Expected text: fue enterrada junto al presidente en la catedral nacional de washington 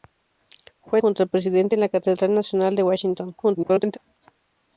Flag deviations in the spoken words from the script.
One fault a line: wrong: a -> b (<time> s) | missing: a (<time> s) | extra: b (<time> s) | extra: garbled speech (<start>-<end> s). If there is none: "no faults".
missing: enterrada (1.0 s)
extra: garbled speech (3.4-4.0 s)